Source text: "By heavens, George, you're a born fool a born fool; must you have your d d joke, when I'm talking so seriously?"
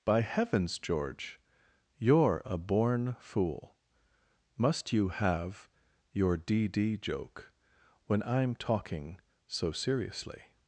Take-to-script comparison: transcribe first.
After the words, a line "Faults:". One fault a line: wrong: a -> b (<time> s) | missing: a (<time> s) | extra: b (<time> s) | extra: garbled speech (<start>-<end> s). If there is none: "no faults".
"By heavens, George, you're a born fool; must you have your d d joke, when I'm talking so seriously?"
Faults:
missing: a born fool (3.8 s)